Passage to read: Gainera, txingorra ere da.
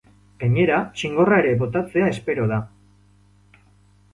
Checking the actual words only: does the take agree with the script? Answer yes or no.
no